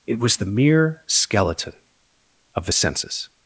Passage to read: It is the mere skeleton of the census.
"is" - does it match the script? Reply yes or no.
no